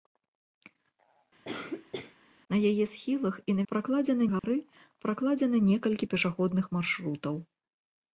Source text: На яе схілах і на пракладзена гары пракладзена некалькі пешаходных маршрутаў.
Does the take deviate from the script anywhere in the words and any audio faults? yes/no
yes